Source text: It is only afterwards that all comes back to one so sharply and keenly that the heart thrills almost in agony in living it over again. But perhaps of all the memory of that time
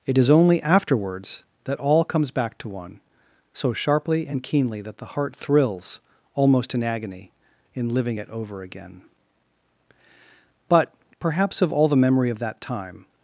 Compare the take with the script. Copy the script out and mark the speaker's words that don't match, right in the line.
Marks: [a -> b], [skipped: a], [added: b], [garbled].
It is only afterwards that all comes back to one so sharply and keenly that the heart thrills almost in agony in living it over again. But perhaps of all the memory of that time